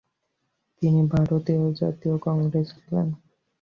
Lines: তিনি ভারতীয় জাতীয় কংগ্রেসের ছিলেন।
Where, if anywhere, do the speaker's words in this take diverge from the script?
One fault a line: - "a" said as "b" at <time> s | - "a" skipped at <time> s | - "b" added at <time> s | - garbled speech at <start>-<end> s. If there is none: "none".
none